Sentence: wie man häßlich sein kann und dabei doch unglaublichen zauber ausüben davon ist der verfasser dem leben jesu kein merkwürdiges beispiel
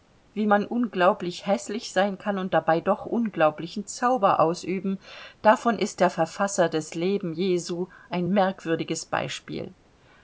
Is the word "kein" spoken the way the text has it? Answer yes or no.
no